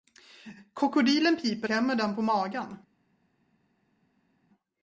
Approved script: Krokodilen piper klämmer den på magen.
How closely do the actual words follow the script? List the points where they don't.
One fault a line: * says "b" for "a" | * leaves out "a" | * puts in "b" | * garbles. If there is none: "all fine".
all fine